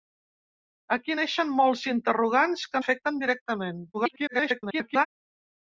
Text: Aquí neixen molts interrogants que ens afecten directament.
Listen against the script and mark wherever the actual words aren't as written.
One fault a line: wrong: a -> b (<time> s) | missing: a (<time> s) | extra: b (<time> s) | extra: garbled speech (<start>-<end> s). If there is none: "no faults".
missing: ens (2.8 s)
extra: garbled speech (3.9-5.1 s)